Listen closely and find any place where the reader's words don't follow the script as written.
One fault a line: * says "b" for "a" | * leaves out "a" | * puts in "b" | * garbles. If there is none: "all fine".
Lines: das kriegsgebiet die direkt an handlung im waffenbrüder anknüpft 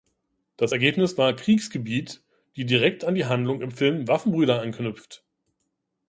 * puts in "ergebnis war"
* puts in "die"
* puts in "film"